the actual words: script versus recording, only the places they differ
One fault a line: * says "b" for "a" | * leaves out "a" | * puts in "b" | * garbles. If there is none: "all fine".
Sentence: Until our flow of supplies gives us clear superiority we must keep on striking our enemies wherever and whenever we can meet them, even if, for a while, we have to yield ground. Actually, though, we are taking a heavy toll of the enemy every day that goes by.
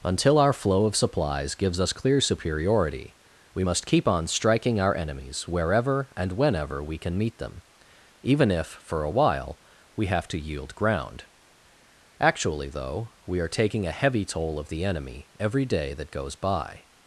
all fine